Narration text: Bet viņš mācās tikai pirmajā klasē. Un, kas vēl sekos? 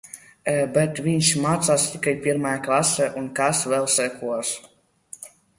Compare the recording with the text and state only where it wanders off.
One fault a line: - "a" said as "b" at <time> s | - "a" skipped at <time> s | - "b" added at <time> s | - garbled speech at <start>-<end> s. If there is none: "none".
none